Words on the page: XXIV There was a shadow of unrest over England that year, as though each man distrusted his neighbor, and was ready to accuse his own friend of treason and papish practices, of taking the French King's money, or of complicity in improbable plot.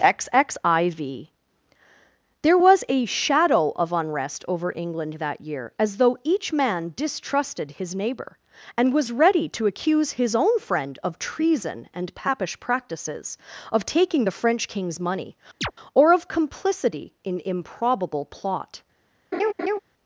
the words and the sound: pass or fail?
fail